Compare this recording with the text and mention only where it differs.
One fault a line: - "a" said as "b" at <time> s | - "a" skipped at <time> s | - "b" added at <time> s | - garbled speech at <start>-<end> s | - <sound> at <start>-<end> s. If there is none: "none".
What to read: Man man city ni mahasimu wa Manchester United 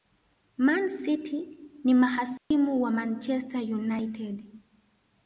- "man" skipped at 0.9 s
- dropout at 2.4-2.5 s